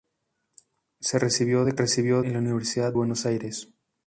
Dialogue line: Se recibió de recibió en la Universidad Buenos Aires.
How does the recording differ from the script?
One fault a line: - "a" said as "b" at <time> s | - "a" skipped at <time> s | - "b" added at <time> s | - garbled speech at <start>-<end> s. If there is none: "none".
none